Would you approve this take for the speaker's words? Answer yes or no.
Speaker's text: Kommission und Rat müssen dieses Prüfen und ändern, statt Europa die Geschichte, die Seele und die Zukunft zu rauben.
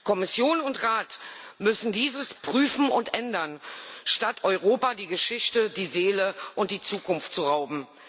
yes